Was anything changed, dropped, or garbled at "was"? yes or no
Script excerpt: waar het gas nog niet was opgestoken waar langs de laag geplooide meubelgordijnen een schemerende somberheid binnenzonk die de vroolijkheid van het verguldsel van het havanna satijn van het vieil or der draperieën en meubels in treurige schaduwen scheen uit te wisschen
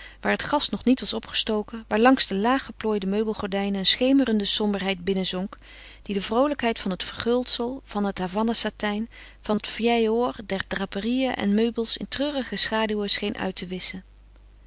no